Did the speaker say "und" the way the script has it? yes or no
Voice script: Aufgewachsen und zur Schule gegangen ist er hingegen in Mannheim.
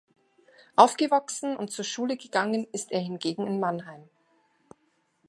yes